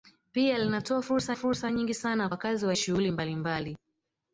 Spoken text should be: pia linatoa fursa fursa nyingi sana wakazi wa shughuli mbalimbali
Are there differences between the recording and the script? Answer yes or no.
no